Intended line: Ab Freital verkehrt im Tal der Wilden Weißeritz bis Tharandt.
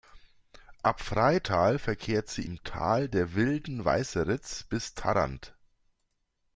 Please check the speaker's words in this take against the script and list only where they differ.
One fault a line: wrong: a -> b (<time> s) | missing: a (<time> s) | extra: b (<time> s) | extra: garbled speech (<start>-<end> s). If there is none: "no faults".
extra: sie (2.3 s)